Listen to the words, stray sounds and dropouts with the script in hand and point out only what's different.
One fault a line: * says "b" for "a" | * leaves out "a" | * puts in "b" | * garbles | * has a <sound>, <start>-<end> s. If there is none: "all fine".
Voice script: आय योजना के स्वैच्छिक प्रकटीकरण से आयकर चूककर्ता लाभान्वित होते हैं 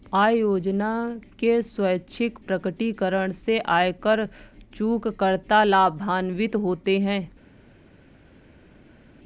all fine